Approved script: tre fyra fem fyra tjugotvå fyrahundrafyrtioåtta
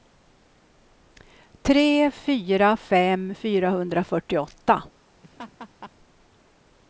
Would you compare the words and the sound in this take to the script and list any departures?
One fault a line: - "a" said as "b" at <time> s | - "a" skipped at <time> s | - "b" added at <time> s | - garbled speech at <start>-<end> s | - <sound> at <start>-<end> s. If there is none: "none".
- "fyra tjugotvå" skipped at 3.4 s
- laugh at 5.2-5.9 s